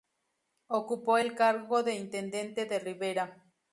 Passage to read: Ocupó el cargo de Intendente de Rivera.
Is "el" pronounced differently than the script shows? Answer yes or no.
no